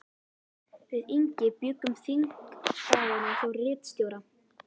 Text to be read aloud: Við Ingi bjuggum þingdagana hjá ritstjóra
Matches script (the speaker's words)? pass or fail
pass